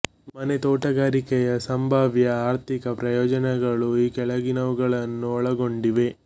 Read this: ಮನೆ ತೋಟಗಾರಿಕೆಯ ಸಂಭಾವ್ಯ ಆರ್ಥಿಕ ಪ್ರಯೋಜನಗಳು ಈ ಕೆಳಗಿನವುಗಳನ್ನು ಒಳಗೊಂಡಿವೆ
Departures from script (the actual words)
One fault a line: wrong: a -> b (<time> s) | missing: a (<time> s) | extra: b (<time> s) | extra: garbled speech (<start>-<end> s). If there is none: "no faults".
no faults